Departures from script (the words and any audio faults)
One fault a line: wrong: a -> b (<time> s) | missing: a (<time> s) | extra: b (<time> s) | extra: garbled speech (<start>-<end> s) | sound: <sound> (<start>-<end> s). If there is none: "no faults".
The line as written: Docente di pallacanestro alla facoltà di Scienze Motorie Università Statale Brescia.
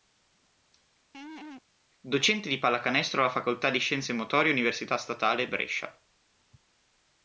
sound: laugh (1.1-1.6 s)